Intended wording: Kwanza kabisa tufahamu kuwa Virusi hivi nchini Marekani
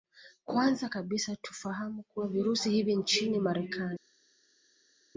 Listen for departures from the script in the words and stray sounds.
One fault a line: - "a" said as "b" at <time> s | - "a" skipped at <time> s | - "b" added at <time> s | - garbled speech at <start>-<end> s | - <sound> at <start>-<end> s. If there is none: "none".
none